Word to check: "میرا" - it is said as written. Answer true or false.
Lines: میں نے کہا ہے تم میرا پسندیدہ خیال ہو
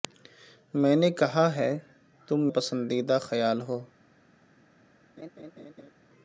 false